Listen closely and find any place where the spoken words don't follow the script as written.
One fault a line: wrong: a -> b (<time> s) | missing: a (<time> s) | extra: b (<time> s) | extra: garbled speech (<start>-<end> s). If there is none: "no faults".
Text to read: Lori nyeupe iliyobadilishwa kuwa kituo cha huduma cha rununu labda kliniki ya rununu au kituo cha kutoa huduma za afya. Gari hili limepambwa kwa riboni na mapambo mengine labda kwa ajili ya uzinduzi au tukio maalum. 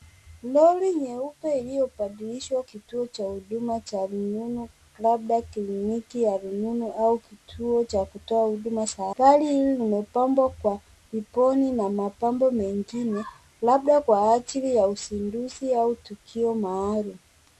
missing: kuwa (2.6 s)
missing: afya (9.1 s)